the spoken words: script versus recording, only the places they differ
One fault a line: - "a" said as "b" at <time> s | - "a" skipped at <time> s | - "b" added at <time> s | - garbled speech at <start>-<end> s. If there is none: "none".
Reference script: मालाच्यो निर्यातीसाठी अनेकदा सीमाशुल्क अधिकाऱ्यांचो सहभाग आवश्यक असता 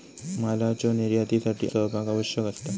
- "अनेकदा सीमाशुल्क अधिकाऱ्यांचो" skipped at 1.7 s